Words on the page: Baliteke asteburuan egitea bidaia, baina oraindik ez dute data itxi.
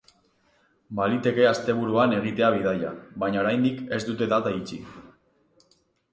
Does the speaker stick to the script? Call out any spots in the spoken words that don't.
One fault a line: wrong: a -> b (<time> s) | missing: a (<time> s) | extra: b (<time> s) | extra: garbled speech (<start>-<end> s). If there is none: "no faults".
no faults